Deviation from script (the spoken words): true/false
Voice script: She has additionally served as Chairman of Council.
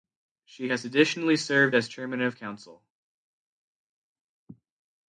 false